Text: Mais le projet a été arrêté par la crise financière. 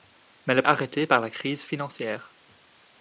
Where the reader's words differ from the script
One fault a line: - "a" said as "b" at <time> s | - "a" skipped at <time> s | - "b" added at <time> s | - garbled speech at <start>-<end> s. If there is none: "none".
- "projet a été" skipped at 0.6 s